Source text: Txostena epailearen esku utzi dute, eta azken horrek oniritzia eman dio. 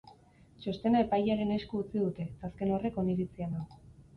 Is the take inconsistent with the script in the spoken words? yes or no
yes